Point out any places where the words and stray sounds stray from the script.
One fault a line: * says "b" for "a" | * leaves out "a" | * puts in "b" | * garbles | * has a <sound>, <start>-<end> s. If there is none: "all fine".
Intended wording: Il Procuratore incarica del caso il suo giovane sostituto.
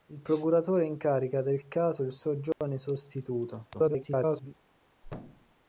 * has a dropout, 2.5-2.6 s
* garbles
* has a thud, 5.0-5.5 s